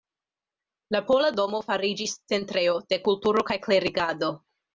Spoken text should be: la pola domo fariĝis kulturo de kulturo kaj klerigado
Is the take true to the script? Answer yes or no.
no